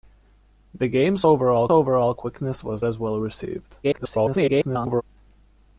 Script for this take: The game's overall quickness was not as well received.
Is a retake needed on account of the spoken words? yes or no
yes